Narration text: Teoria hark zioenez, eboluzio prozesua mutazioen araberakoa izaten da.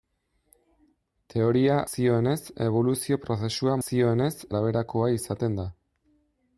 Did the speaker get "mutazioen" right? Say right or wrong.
wrong